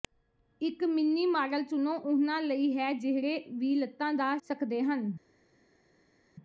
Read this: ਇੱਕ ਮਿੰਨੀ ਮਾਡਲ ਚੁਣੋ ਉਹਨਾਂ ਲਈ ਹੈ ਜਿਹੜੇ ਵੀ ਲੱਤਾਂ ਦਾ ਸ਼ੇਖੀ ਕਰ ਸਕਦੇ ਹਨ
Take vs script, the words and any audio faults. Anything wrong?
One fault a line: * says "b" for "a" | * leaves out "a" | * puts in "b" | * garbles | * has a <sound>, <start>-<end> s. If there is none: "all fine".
* leaves out "ਸ਼ੇਖੀ ਕਰ"